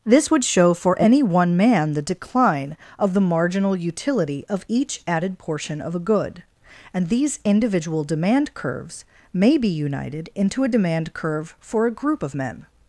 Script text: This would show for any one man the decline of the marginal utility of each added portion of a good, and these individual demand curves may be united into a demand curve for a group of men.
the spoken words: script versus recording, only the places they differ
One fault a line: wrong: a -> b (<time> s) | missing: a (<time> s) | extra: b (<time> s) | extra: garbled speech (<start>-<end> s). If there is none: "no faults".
no faults